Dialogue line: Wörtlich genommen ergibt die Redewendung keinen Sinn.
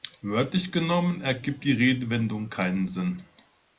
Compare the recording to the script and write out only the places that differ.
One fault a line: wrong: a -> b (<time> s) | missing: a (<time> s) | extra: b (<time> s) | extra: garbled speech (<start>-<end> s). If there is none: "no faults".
no faults